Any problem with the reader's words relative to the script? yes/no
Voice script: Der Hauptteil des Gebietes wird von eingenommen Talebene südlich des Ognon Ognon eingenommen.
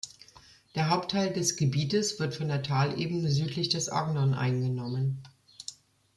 yes